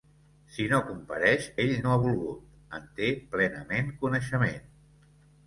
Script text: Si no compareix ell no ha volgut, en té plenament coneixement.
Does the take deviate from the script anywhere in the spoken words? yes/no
no